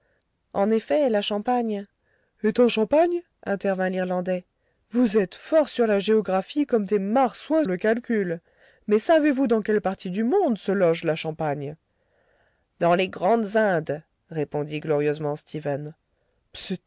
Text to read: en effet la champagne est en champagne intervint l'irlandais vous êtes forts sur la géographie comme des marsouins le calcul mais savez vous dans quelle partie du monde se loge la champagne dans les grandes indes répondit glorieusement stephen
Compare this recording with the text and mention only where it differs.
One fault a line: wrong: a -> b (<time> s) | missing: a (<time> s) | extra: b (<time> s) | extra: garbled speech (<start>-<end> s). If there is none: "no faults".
no faults